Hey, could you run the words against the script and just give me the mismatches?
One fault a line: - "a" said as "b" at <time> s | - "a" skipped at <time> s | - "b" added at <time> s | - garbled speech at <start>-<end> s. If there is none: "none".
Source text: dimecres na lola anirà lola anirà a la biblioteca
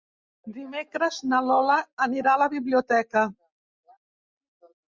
- "lola anirà" skipped at 2.3 s